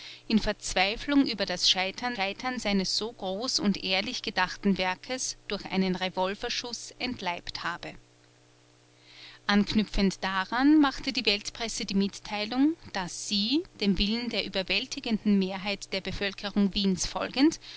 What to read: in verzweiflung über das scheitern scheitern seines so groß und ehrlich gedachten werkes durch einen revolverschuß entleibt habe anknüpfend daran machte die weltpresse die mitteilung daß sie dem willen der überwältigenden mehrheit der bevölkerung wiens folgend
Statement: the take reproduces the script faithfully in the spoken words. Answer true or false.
true